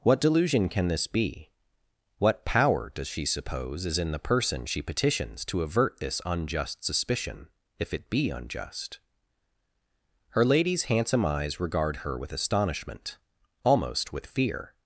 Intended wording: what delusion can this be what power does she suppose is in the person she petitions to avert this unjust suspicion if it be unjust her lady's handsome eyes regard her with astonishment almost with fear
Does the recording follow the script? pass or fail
pass